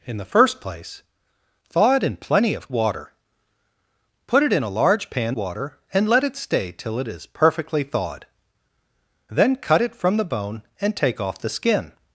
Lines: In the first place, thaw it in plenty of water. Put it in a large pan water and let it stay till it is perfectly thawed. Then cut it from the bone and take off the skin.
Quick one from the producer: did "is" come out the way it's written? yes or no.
yes